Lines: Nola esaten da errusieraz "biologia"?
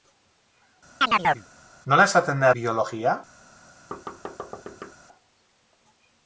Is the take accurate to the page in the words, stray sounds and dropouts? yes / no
no